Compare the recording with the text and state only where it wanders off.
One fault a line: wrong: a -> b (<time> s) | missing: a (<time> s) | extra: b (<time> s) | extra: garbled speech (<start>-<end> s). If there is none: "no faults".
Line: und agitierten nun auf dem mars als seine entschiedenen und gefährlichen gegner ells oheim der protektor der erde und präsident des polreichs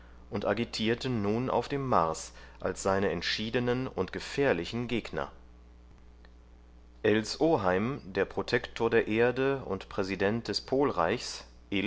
no faults